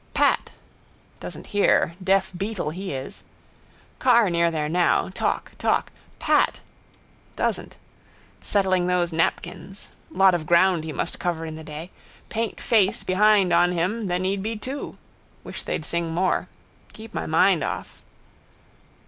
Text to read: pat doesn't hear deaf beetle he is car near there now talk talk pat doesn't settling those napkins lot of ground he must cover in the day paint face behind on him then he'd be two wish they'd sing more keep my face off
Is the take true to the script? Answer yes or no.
no